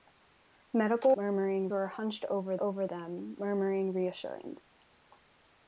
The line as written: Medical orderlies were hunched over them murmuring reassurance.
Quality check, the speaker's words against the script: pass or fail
fail